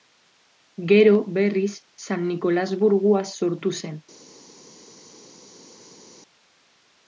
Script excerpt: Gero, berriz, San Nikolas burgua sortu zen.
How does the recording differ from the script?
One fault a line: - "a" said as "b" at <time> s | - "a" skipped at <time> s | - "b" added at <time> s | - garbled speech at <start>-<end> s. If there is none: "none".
none